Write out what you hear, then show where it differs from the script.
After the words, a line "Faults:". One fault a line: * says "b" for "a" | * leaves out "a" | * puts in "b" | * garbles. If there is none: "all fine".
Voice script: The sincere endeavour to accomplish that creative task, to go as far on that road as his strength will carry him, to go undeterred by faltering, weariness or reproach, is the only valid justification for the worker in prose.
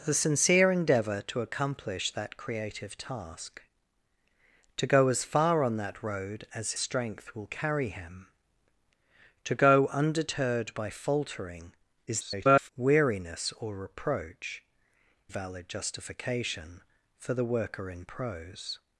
The sincere endeavour to accomplish that creative task, to go as far on that road as strength will carry him, to go undeterred by faltering, [garbled] weariness or reproach, valid justification for the worker in prose.
Faults:
* leaves out "his"
* garbles
* leaves out "is the only"